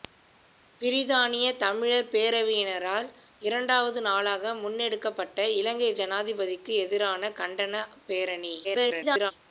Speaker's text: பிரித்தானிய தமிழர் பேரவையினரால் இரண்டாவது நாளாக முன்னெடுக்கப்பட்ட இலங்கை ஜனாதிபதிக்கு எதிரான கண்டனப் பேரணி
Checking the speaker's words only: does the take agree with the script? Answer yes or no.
no